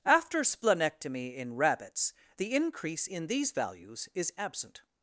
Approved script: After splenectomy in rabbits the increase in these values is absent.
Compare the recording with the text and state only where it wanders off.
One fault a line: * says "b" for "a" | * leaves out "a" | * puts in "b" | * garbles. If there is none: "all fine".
all fine